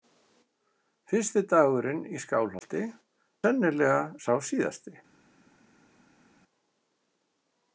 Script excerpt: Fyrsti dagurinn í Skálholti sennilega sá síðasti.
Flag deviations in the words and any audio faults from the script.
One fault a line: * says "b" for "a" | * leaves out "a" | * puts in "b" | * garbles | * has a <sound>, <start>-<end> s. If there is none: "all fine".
all fine